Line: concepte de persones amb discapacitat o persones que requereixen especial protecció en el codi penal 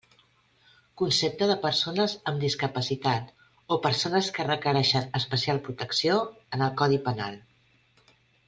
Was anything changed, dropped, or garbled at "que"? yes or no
no